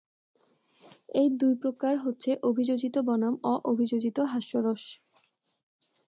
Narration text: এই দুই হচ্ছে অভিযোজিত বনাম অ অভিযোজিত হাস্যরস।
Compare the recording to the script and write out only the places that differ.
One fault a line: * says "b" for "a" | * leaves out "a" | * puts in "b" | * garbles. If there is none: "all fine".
* puts in "প্রকার"